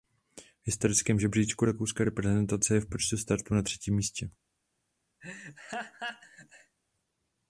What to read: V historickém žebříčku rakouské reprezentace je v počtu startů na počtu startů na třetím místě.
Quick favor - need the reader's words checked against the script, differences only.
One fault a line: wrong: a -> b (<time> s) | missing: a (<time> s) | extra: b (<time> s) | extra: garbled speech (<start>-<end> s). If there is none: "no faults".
missing: počtu startů na (3.6 s)